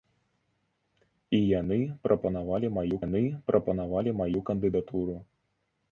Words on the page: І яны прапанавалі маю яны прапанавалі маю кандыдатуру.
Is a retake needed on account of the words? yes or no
no